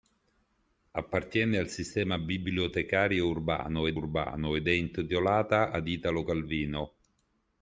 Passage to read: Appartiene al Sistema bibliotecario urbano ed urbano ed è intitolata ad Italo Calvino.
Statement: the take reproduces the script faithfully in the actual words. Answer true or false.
true